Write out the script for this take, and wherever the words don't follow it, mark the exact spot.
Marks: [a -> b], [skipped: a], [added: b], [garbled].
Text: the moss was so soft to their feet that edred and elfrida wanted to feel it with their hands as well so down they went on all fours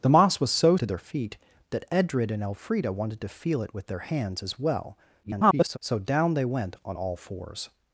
the moss was so [skipped: soft] to their feet that edred and elfrida wanted to feel it with their hands as well [garbled] so down they went on all fours